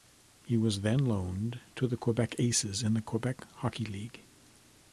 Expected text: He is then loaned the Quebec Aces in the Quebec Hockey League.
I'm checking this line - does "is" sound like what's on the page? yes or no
no